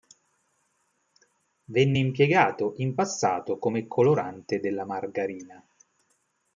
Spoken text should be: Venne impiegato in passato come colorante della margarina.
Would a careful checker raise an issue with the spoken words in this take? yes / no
no